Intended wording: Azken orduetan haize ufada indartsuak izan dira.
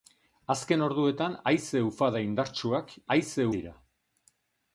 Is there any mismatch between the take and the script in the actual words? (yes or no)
yes